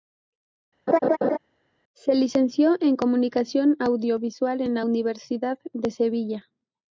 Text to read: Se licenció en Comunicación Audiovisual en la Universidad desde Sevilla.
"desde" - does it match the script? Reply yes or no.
no